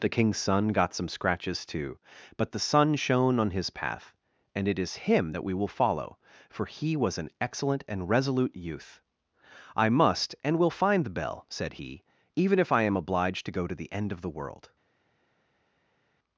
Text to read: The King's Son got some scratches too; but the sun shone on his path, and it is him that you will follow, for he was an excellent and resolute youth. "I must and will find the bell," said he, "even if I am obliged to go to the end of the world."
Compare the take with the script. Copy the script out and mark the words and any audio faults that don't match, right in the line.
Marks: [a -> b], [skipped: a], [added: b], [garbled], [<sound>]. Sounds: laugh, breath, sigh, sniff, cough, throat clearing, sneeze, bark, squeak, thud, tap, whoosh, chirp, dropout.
The King's Son got some scratches too; but the sun shone on his path, and it is him that [you -> we] will follow, for he was an excellent and resolute youth. "I must and will find the bell," said he, "even if I am obliged to go to the end of the world."